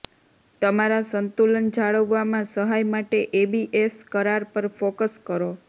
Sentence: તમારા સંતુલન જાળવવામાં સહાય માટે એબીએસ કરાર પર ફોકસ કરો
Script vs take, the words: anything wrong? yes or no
no